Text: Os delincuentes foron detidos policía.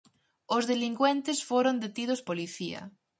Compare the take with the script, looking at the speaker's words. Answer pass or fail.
pass